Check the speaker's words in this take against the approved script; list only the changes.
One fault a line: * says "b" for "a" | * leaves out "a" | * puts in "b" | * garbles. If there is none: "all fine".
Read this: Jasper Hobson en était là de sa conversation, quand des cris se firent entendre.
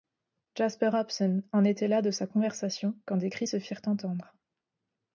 all fine